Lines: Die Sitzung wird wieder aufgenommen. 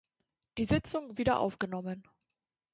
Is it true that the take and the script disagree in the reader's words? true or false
true